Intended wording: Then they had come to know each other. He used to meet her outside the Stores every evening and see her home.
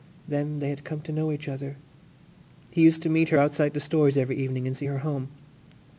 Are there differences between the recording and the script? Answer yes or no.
no